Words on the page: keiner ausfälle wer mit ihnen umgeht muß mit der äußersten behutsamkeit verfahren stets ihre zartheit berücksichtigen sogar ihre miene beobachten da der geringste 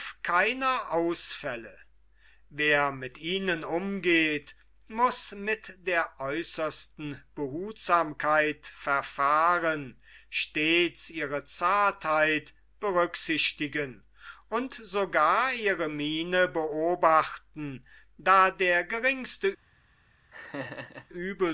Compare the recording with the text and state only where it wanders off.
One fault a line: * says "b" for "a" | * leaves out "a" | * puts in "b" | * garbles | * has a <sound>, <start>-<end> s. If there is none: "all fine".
* puts in "und"
* has a laugh, 20.3-21.1 s